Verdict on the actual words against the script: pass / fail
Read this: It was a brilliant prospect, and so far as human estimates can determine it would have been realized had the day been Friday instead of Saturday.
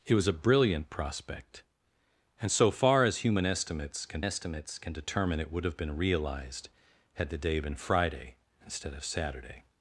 fail